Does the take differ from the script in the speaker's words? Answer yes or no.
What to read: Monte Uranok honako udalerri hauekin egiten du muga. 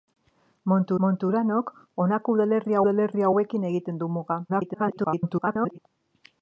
yes